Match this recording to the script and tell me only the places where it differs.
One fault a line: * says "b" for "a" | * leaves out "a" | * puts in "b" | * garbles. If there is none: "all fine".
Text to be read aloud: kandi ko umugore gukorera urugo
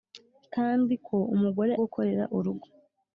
all fine